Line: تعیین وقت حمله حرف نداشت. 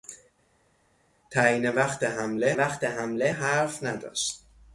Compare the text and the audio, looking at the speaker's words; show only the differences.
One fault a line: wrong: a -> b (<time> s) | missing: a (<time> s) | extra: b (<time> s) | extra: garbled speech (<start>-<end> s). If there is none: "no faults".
extra: وقت حمله (2.5 s)